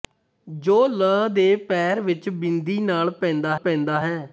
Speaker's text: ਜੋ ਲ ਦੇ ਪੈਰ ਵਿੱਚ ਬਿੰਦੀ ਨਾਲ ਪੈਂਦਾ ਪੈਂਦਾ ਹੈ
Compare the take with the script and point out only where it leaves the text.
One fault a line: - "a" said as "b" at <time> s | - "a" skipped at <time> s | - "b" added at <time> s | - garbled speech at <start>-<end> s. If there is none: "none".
none